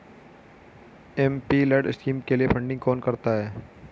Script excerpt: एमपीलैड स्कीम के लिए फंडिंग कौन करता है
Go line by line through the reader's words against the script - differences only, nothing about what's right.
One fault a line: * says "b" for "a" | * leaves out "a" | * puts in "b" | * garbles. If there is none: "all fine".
all fine